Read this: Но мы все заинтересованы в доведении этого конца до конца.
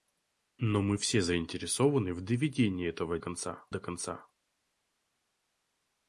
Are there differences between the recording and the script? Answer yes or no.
no